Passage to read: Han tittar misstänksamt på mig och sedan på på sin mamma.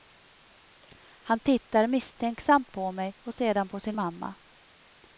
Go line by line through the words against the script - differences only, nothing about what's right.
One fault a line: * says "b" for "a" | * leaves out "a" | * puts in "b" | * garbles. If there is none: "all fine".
* leaves out "på"